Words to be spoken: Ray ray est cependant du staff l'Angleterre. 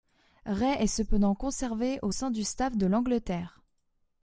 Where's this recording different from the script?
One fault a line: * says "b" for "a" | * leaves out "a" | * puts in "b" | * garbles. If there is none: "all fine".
* leaves out "ray"
* puts in "conservé au sein"
* puts in "de"